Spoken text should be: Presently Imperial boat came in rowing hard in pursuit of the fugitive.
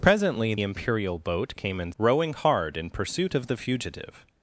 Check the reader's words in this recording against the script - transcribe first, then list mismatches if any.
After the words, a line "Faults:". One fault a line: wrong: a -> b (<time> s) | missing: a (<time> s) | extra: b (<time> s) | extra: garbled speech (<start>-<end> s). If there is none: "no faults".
Presently Imperial boat came in rowing hard in pursuit of the fugitive.
Faults:
no faults